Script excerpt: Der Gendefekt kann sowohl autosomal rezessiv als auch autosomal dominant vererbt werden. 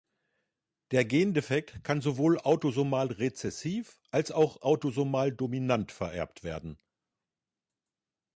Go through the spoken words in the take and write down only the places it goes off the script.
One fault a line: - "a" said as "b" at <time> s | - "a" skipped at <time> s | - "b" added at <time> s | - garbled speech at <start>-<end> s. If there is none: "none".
none